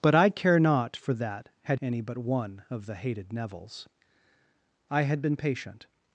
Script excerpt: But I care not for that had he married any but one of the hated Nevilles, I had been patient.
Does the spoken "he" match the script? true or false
false